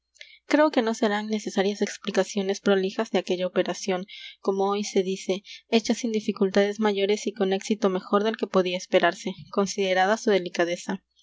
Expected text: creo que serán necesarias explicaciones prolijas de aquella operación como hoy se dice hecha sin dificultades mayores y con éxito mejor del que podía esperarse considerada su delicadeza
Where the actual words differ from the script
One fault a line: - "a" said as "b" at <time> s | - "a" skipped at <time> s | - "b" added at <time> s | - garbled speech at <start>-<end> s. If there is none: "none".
- "no" added at 0.8 s